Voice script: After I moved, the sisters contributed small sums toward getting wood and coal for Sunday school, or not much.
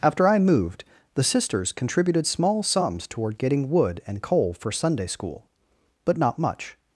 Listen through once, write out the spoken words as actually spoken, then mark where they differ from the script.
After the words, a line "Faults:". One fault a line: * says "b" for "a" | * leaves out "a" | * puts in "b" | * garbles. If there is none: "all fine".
After I moved, the sisters contributed small sums toward getting wood and coal for Sunday school, but not much.
Faults:
* says "but" for "or"